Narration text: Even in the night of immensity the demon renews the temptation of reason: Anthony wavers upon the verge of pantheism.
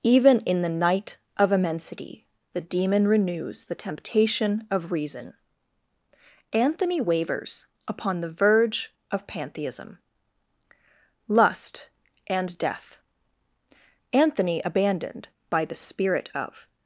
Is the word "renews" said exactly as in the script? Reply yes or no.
yes